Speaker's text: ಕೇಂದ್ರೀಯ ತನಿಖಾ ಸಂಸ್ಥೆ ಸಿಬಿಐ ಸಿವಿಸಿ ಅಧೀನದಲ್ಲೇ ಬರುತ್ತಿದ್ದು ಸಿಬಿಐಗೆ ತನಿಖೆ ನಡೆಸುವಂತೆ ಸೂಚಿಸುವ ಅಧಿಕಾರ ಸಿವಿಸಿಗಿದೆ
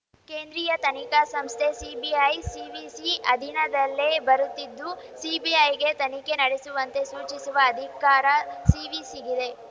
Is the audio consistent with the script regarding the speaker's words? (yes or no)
yes